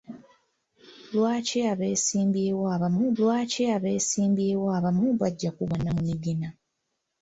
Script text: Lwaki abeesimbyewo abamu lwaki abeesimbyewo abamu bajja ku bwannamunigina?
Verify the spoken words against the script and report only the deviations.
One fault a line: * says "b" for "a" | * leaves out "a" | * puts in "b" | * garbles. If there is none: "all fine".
all fine